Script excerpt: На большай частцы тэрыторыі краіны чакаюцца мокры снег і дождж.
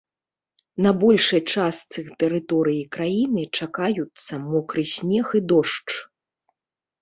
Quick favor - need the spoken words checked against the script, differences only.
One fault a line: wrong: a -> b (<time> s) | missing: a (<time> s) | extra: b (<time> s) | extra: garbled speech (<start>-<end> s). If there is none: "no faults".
no faults